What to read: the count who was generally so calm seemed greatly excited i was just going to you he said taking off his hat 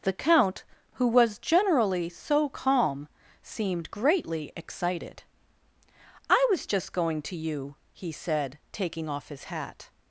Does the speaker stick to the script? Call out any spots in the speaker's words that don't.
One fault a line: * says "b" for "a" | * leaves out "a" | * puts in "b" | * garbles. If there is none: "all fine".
all fine